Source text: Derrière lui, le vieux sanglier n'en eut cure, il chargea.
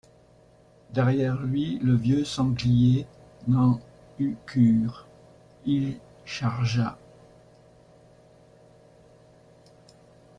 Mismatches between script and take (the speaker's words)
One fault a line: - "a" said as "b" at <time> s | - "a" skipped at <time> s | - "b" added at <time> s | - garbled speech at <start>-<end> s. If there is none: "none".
none